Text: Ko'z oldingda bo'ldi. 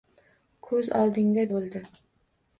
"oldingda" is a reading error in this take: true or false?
false